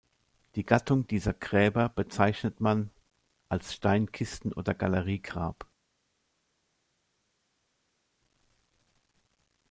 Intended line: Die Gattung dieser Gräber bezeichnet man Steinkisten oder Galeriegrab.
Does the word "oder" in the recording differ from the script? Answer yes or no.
no